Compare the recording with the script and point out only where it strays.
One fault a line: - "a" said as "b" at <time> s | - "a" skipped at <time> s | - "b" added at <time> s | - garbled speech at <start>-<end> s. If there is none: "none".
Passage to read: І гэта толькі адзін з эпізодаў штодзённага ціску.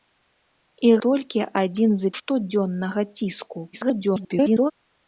- "гэта" skipped at 0.9 s
- "эпізодаў" skipped at 2.1 s
- garbled speech at 3.7-4.7 s